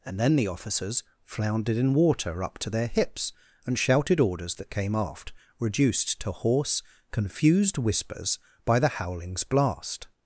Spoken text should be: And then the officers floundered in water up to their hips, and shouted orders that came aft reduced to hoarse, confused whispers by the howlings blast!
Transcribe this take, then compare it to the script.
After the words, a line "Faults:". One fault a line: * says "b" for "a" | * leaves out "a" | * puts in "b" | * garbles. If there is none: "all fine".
And then the officers floundered in water up to their hips, and shouted orders that came aft reduced to hoarse, confused whispers by the howlings blast!
Faults:
all fine